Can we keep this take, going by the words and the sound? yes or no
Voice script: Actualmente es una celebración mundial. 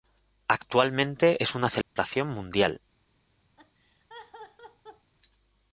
no